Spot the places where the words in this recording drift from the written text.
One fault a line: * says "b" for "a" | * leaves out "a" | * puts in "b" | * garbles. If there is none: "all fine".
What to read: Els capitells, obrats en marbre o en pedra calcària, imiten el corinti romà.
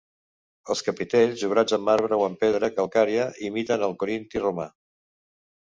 all fine